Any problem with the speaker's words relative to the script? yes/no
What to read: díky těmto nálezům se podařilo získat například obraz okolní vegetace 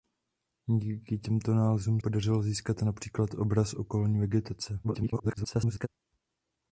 yes